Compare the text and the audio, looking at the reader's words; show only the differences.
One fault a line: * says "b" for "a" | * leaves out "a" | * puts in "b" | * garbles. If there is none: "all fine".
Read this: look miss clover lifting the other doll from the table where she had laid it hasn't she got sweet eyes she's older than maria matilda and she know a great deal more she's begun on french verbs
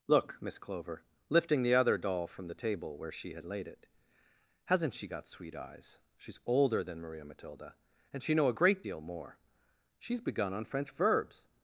all fine